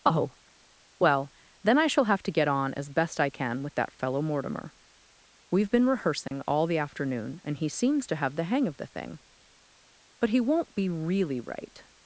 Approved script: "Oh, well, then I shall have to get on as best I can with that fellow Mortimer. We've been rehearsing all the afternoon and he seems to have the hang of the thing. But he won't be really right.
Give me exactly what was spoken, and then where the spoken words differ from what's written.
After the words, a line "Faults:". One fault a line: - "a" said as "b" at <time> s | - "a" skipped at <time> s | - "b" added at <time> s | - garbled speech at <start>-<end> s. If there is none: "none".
"Oh, well, then I shall have to get on as best I can with that fellow Mortimer. We've been rehearsing all the afternoon and he seems to have the hang of the thing. But he won't be really right.
Faults:
none